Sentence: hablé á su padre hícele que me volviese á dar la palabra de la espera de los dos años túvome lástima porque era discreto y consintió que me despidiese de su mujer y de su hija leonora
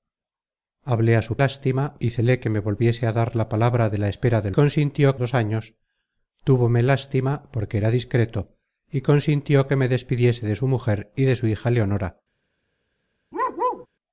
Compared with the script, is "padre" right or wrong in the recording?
wrong